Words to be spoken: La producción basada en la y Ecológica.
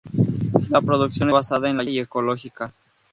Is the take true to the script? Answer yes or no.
yes